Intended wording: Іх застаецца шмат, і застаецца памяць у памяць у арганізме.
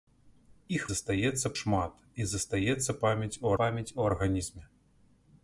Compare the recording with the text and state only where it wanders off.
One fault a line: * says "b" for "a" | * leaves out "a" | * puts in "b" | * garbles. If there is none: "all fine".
all fine